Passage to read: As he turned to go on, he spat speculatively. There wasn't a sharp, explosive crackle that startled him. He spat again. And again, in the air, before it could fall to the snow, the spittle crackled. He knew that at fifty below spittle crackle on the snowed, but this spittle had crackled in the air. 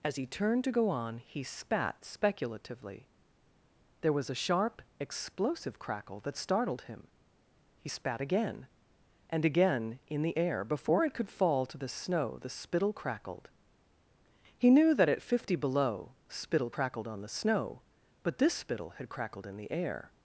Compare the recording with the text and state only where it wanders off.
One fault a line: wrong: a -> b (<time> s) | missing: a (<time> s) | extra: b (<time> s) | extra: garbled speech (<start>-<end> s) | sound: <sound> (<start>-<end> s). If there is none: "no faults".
wrong: wasn't -> was (4.1 s)
wrong: crackle -> crackled (16.7 s)
wrong: snowed -> snow (17.3 s)